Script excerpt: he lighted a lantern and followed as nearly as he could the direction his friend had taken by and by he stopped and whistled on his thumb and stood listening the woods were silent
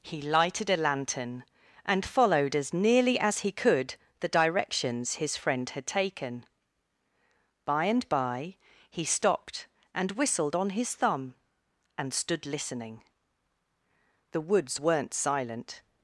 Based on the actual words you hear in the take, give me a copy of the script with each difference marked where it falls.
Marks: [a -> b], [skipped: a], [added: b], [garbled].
he lighted a lantern and followed as nearly as he could the [direction -> directions] his friend had taken by and by he stopped and whistled on his thumb and stood listening the woods [were -> weren't] silent